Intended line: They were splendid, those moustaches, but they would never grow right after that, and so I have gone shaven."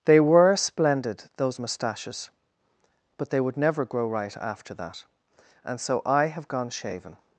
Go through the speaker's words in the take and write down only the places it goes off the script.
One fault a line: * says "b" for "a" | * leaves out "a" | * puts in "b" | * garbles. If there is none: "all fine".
all fine